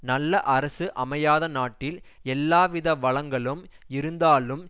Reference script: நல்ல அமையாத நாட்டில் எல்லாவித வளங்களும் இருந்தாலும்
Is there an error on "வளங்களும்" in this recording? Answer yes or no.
no